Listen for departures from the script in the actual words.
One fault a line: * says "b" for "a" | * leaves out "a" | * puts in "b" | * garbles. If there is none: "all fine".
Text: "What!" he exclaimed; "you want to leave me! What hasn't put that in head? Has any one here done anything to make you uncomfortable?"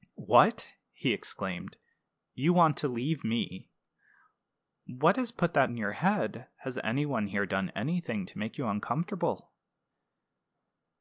* says "has" for "hasn't"
* puts in "your"